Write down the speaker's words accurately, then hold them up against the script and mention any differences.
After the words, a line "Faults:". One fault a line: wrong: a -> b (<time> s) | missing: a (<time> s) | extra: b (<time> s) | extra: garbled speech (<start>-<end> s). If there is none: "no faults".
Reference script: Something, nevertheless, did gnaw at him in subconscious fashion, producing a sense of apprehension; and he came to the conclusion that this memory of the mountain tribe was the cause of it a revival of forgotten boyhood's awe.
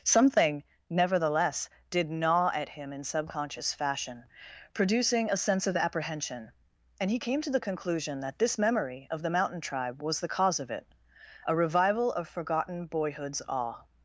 Something, nevertheless, did gnaw at him in subconscious fashion, producing a sense of apprehension; and he came to the conclusion that this memory of the mountain tribe was the cause of it a revival of forgotten boyhood's awe.
Faults:
no faults